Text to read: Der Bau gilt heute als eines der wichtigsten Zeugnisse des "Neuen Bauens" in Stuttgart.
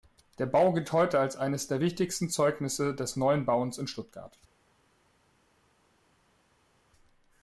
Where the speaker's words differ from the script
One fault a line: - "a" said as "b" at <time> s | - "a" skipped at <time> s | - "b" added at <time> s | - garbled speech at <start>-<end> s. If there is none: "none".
none